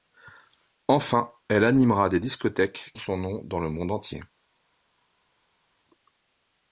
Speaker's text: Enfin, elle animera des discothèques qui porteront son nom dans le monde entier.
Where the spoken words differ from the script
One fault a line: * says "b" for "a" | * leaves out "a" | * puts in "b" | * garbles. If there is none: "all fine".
* leaves out "qui porteront"